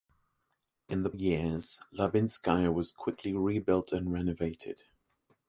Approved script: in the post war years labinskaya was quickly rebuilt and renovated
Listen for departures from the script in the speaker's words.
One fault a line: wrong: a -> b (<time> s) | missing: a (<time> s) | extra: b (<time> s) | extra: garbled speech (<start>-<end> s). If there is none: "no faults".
missing: post war (1.1 s)